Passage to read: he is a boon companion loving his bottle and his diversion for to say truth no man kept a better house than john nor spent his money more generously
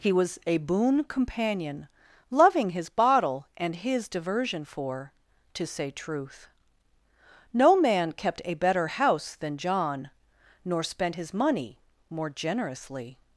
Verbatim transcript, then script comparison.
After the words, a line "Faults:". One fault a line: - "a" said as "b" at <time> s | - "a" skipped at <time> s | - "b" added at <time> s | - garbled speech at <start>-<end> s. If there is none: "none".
he was a boon companion loving his bottle and his diversion for to say truth no man kept a better house than john nor spent his money more generously
Faults:
- "is" said as "was" at 0.1 s